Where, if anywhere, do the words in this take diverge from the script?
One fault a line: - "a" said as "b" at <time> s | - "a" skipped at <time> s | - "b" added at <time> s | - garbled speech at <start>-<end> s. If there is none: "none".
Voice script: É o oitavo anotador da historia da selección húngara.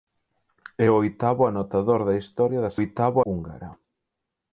- "selección" said as "oitavo" at 2.8 s